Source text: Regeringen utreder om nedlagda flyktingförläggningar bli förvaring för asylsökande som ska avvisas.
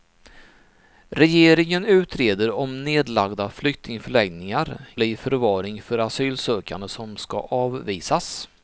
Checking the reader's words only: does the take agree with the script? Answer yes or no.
yes